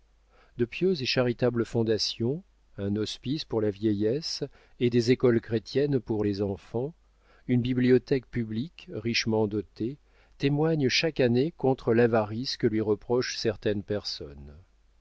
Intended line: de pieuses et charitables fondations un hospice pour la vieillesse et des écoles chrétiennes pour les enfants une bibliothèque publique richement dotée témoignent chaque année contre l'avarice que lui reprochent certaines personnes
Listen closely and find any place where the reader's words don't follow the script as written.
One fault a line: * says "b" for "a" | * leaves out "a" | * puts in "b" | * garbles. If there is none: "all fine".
all fine